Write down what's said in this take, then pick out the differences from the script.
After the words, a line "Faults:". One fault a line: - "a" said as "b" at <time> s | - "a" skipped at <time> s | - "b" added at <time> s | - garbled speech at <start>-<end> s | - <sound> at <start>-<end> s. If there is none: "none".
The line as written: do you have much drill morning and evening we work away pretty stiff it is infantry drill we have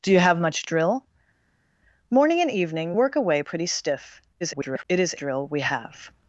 do you have much drill morning and evening work away pretty stiff [garbled] it is drill we have
Faults:
- "we" skipped at 2.9 s
- garbled speech at 4.4-4.8 s
- "infantry" skipped at 5.2 s